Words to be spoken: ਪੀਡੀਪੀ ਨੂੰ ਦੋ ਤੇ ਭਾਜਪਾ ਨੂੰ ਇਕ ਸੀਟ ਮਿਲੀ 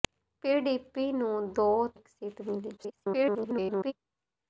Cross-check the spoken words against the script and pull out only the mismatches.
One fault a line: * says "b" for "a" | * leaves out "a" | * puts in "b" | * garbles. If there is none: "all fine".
* leaves out "ਤੇ ਭਾਜਪਾ ਨੂੰ"
* garbles